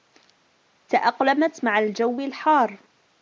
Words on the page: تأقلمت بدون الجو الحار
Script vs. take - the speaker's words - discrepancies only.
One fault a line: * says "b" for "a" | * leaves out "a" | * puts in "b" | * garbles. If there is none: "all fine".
* says "مع" for "بدون"